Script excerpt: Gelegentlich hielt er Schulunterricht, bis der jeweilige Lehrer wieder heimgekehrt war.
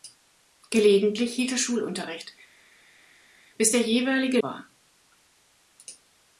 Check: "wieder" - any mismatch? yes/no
yes